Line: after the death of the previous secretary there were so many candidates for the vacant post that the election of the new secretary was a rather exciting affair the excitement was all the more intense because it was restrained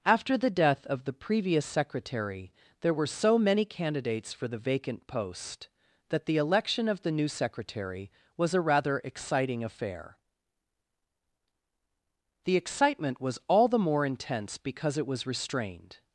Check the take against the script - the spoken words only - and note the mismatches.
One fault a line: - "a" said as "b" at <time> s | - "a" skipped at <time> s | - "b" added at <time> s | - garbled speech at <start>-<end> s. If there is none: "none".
none